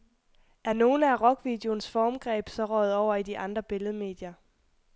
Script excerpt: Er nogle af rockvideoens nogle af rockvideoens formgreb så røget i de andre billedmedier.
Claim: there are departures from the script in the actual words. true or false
true